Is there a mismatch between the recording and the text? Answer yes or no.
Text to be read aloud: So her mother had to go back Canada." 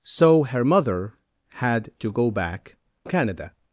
no